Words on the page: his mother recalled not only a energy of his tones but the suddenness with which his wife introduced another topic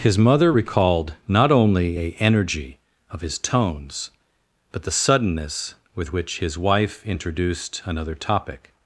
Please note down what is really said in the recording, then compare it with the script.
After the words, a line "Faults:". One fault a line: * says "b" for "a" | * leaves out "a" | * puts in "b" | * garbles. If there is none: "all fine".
his mother recalled not only a energy of his tones but the suddenness with which his wife introduced another topic
Faults:
all fine